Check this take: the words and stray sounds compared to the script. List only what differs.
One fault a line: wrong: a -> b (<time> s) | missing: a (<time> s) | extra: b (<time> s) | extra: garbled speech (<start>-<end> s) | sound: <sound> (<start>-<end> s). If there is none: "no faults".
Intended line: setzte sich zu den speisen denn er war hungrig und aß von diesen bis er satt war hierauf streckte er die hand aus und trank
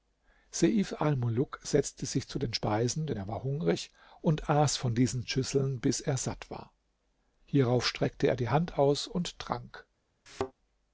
extra: schüsseln (5.3 s)
sound: thud (10.3-10.5 s)